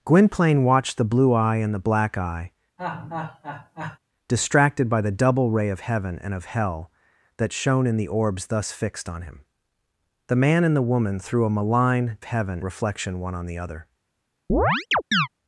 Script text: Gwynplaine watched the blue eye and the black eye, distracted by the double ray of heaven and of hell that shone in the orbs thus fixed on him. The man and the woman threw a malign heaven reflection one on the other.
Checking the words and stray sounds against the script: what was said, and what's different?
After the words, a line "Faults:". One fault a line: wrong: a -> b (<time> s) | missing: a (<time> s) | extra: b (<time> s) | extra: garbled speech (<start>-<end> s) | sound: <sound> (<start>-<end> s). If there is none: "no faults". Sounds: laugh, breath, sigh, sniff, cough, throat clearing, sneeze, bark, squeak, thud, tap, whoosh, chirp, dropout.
Gwynplaine watched the blue eye and the black eye, distracted by the double ray of heaven and of hell that shone in the orbs thus fixed on him. The man and the woman threw a malign heaven reflection one on the other.
Faults:
sound: laugh (2.8-4.0 s)
sound: chirp (14.5-15.3 s)